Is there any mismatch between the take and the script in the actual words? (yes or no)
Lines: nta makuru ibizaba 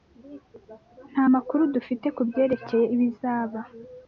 yes